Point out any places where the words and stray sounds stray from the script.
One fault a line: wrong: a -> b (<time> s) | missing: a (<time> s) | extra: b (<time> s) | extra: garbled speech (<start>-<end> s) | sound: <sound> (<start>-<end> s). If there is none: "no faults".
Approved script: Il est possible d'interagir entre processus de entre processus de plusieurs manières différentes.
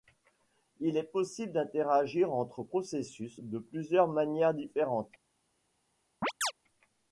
missing: entre processus de (3.6 s)
sound: chirp (6.2-6.5 s)